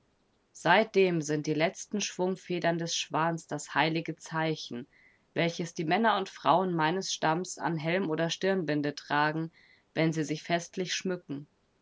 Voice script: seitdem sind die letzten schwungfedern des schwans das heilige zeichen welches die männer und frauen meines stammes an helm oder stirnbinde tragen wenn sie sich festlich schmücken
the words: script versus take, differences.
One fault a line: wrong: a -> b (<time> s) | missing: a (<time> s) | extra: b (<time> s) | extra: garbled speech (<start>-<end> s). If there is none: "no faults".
no faults